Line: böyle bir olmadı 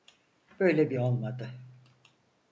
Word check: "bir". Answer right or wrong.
right